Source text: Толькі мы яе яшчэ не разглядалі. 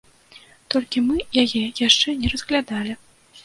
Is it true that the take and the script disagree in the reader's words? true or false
false